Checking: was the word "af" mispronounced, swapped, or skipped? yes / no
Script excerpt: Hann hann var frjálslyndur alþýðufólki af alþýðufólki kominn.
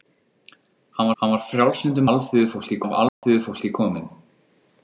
no